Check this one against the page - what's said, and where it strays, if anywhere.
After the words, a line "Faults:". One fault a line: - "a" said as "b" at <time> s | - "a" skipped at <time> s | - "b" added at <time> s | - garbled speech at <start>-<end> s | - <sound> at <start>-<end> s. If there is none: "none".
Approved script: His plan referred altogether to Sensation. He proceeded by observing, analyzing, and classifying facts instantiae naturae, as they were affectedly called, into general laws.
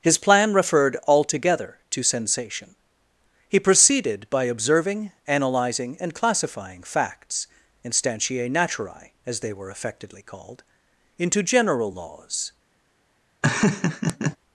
His plan referred altogether to Sensation. He proceeded by observing, analyzing, and classifying facts instantiae naturae, as they were affectedly called, into general laws.
Faults:
- laugh at 13.4-14.4 s